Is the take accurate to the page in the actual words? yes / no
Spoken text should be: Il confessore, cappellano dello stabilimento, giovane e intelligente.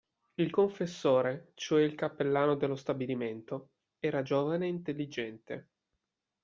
no